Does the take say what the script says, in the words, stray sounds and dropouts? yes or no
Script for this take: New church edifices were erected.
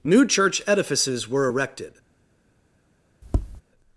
no